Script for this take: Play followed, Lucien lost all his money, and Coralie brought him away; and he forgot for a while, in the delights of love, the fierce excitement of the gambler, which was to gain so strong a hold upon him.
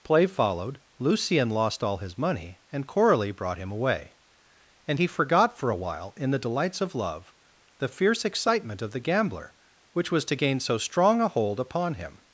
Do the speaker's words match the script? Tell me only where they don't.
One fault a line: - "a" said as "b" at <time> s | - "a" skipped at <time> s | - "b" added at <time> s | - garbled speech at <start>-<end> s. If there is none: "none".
none